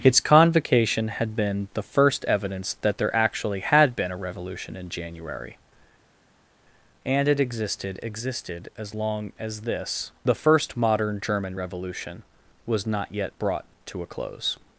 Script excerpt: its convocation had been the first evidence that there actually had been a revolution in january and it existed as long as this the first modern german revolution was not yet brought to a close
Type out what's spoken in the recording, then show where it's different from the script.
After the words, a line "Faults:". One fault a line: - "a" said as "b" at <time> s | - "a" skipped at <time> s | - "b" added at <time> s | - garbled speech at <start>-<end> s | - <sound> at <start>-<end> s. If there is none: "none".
its convocation had been the first evidence that there actually had been a revolution in january and it existed existed as long as this the first modern german revolution was not yet brought to a close
Faults:
- "existed" added at 8.0 s